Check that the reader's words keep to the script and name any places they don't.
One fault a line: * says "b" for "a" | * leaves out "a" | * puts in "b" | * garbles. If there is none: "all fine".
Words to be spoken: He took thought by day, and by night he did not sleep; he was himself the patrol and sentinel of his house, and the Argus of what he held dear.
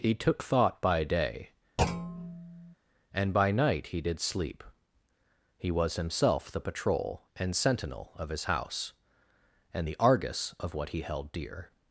* leaves out "not"